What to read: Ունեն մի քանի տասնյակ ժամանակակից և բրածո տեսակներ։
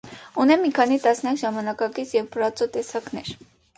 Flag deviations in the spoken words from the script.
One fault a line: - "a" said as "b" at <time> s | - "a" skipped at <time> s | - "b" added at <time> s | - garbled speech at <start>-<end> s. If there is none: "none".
none